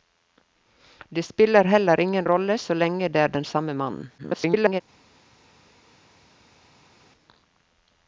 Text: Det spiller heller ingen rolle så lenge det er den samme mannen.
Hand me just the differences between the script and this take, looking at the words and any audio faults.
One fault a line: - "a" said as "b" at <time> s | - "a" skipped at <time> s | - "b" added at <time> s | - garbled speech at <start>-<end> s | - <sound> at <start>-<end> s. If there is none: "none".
- garbled speech at 4.2-4.8 s